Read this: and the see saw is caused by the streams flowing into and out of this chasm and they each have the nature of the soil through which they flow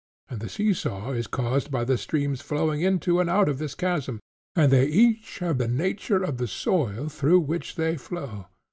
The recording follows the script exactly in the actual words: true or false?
true